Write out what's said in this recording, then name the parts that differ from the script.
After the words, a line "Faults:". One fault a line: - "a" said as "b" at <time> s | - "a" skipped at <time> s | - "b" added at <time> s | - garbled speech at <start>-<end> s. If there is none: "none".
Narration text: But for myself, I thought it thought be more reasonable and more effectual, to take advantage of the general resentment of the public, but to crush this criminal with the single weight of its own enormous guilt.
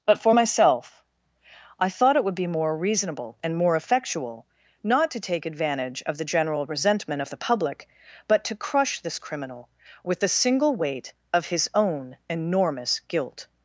But for myself, I thought it would be more reasonable and more effectual, not to take advantage of the general resentment of the public, but to crush this criminal with the single weight of his own enormous guilt.
Faults:
- "thought" said as "would" at 2.2 s
- "not" added at 4.8 s
- "its" said as "his" at 11.5 s